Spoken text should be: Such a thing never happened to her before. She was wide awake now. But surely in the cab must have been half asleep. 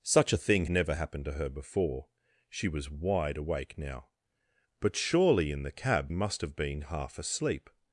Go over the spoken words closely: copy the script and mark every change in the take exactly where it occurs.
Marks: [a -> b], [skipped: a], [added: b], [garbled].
Such a thing never happened to her before. She was wide awake now. But surely in the cab must have been half asleep.